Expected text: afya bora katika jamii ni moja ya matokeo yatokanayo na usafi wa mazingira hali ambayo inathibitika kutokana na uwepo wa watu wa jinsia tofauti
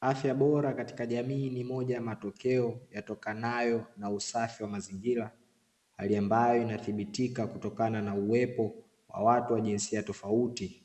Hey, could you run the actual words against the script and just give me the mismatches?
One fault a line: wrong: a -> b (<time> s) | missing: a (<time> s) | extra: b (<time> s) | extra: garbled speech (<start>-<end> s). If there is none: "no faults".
no faults